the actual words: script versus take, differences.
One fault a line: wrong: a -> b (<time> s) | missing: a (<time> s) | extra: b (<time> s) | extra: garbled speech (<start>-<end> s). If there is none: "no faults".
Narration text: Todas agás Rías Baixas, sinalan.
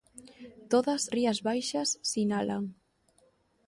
missing: agás (1.0 s)